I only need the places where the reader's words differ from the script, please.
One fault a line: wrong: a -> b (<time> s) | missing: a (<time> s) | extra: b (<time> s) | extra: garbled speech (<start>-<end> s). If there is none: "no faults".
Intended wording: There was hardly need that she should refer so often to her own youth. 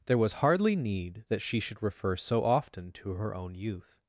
no faults